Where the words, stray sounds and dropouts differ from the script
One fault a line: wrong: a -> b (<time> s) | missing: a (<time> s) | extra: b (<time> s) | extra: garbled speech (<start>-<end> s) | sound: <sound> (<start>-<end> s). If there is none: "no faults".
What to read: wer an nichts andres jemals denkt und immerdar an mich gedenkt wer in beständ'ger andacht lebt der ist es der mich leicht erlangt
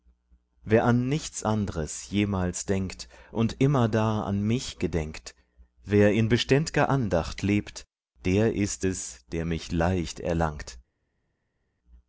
no faults